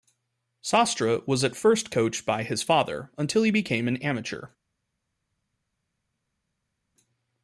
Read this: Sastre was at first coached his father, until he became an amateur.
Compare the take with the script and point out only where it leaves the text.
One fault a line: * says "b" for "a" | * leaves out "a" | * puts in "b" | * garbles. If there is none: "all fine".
* puts in "by"